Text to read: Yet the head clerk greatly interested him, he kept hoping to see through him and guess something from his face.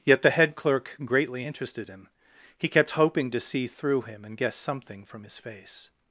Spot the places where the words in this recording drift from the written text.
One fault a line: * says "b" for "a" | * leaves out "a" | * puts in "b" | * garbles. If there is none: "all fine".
all fine